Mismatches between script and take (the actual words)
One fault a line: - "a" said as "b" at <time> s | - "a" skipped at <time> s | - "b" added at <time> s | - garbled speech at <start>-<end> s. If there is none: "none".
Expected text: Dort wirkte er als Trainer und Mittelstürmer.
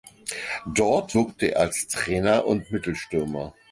none